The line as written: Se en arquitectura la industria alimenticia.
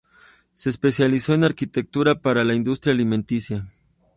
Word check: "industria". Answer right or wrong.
right